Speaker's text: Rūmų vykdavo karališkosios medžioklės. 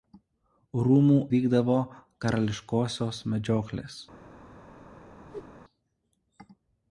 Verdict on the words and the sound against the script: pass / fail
fail